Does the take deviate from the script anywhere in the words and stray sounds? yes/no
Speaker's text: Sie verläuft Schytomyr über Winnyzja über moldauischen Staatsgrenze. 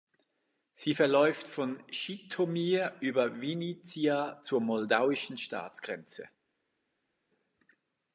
yes